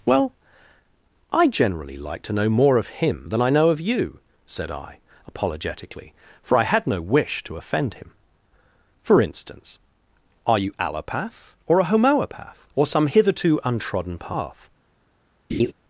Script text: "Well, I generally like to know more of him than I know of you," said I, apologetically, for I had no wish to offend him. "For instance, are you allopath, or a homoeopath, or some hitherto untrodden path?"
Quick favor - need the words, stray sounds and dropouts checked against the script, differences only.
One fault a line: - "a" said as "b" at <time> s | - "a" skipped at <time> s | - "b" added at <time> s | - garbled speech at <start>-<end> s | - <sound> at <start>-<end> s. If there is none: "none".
- laugh at 15.5-15.7 s